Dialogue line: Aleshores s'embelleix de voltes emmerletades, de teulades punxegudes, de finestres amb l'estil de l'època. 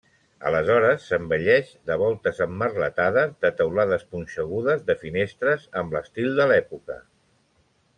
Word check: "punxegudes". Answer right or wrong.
right